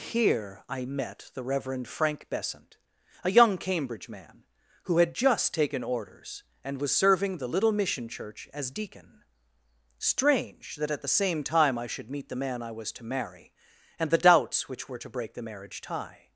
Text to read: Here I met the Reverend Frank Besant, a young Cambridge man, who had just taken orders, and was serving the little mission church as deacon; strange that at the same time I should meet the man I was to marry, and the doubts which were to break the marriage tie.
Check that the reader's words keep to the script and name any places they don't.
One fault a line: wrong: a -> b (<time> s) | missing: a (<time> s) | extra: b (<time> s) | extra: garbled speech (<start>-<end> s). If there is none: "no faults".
no faults